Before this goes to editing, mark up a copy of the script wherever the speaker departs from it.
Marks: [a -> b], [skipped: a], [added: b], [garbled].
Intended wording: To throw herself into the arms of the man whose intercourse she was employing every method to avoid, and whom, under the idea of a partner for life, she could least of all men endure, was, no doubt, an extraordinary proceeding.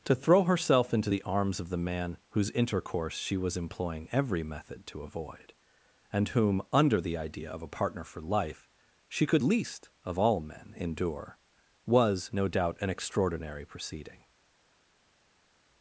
To throw herself into the arms of the man whose intercourse she was employing every method to avoid, and whom, under the idea of a partner for life, she could least of all men endure, was, no doubt, an extraordinary proceeding.